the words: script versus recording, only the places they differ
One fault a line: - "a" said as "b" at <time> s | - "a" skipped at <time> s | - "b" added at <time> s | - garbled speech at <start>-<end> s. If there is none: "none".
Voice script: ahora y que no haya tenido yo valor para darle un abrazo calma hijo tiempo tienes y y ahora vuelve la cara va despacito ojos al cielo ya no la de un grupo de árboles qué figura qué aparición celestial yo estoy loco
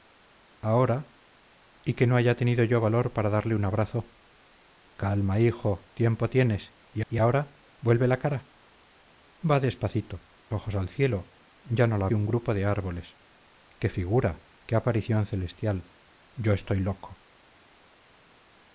none